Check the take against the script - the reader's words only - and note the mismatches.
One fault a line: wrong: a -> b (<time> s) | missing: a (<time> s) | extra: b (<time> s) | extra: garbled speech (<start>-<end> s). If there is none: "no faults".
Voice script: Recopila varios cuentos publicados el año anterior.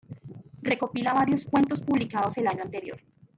no faults